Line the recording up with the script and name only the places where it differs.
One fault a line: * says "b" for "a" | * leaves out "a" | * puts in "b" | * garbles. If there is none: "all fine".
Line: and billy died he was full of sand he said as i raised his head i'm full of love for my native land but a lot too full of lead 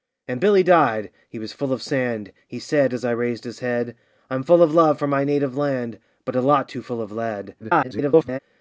* garbles